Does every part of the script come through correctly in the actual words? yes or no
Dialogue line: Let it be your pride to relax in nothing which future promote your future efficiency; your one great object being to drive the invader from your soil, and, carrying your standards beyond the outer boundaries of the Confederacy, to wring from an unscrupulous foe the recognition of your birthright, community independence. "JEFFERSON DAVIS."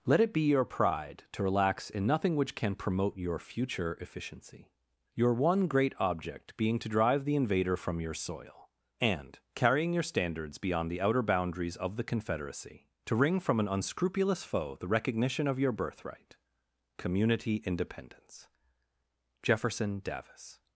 no